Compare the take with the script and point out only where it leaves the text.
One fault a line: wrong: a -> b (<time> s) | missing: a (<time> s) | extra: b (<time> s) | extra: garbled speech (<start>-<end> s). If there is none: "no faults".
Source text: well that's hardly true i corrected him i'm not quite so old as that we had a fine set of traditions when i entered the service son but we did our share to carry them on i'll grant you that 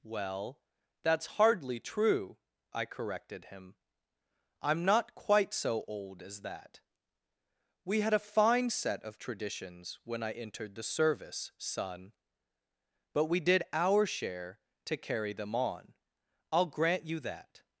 no faults